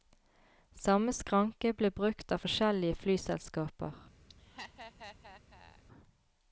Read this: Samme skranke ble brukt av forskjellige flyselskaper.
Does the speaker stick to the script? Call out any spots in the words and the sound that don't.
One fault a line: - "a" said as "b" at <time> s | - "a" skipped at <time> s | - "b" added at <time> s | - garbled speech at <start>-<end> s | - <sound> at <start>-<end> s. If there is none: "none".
- laugh at 4.3-5.8 s